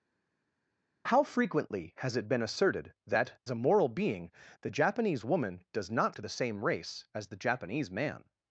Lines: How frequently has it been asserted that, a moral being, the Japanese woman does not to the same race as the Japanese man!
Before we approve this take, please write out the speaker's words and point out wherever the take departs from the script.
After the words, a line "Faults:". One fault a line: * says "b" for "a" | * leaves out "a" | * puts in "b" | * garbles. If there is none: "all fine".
How frequently has it been asserted that, a moral being, the Japanese woman does not to the same race as the Japanese man!
Faults:
all fine